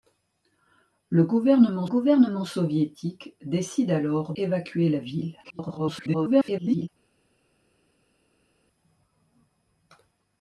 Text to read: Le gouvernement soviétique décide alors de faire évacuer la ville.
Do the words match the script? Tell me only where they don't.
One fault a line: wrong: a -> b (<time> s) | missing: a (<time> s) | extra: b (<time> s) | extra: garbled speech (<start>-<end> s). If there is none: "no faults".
extra: gouvernement (1.8 s)
missing: de faire (4.3 s)
extra: garbled speech (5.4-6.9 s)